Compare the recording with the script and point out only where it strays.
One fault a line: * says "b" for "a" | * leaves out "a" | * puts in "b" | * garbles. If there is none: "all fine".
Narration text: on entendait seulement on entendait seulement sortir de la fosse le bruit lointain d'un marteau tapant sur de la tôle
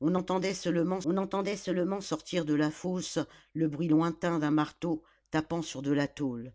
all fine